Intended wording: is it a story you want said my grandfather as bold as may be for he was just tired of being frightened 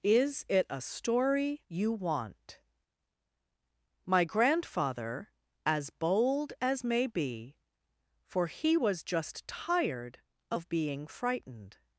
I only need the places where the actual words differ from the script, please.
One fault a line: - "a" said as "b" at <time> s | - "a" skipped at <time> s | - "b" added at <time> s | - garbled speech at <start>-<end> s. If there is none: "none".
- "said" skipped at 2.6 s